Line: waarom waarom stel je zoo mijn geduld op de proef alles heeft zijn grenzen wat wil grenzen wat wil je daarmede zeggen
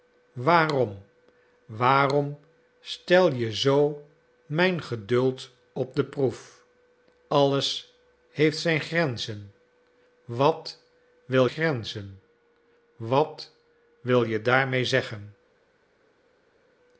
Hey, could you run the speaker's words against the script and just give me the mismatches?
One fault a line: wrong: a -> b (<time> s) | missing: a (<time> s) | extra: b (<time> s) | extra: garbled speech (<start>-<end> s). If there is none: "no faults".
no faults